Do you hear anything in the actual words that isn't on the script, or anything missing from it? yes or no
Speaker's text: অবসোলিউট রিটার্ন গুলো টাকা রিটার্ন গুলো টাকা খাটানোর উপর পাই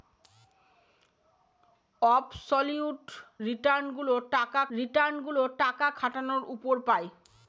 no